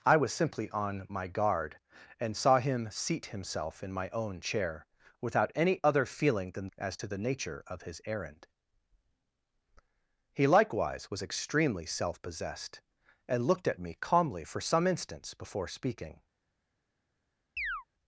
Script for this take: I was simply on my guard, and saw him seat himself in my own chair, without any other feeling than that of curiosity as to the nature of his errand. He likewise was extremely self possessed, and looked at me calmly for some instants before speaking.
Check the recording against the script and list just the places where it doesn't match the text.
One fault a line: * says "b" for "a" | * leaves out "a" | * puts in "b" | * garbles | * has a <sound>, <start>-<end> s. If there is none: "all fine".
* leaves out "that of curiosity"
* has a chirp, 17.6-17.8 s